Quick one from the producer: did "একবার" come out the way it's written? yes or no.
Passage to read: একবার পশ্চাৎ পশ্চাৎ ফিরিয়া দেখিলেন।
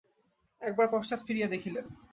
yes